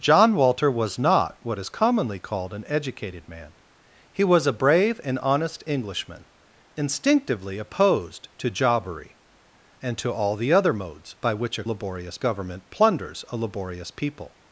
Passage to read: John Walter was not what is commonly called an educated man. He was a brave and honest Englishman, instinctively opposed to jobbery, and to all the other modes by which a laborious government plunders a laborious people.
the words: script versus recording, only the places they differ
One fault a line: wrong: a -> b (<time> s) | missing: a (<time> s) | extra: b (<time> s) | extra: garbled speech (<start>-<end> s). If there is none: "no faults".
no faults